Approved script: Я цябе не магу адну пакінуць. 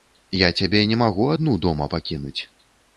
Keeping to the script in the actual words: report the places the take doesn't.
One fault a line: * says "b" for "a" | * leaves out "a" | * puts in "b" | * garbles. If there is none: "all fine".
* puts in "дома"